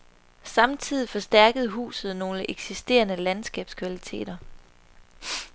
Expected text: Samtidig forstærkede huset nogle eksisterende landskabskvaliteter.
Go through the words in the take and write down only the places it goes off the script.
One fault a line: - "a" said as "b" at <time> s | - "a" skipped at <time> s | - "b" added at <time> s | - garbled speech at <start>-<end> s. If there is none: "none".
none